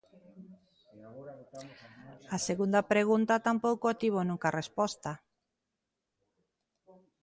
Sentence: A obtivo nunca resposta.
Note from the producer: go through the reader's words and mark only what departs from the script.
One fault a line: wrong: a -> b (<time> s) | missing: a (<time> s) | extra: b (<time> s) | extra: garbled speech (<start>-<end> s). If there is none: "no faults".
extra: segunda pregunta tampouco (2.5 s)